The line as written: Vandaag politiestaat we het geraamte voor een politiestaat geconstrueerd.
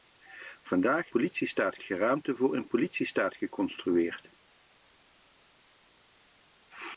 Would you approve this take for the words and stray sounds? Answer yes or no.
yes